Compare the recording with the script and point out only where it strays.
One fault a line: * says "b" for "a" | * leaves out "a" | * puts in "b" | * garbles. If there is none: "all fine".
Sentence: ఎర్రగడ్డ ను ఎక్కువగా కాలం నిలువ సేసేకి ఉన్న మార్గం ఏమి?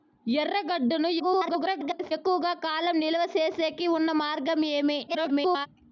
* garbles
* garbles